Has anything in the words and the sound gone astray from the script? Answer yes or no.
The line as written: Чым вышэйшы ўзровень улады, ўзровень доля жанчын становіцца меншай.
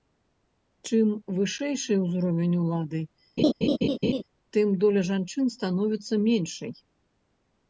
yes